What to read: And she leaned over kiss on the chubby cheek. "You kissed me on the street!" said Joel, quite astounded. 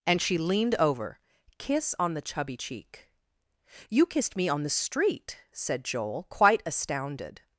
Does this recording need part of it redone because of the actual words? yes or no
no